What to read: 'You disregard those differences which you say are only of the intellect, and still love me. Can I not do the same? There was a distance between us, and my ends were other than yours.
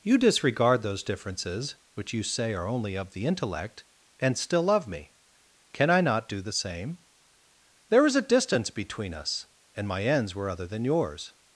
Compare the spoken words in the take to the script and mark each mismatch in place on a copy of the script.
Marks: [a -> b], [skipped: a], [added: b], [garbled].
'You disregard those differences which you say are only of the intellect, and still love me. Can I not do the same? There [was -> is] a distance between us, and my ends were other than yours.